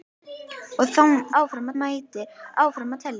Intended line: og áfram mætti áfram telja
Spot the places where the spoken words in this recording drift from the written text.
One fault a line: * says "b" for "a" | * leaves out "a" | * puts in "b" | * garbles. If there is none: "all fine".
all fine